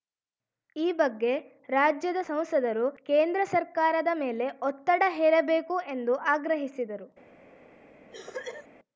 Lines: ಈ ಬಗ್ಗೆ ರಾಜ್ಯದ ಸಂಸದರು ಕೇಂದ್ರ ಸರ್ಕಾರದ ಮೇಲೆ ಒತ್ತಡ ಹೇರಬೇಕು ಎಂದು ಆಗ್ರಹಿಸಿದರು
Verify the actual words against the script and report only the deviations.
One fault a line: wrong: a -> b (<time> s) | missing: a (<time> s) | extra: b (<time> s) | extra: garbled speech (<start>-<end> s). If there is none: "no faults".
no faults